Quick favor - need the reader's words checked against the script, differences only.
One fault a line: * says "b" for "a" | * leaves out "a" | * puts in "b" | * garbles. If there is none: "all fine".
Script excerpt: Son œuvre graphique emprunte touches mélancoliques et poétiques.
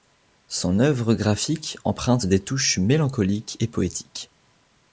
* puts in "des"